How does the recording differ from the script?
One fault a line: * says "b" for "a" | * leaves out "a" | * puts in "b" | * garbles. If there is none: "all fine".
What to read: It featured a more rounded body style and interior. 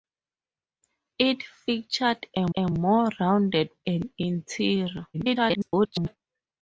* puts in "a"
* leaves out "body style"
* garbles